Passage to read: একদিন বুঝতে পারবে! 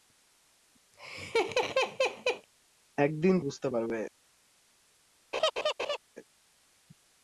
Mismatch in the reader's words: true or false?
false